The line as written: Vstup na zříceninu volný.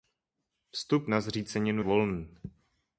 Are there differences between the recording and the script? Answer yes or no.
no